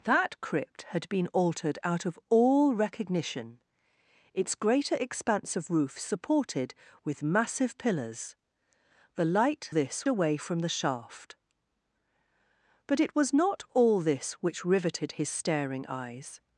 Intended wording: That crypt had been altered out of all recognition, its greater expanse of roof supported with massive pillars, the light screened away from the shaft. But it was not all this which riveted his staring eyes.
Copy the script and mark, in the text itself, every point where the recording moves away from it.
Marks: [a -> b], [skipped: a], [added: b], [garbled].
That crypt had been altered out of all recognition, its greater expanse of roof supported with massive pillars, the light [screened -> this] away from the shaft. But it was not all this which riveted his staring eyes.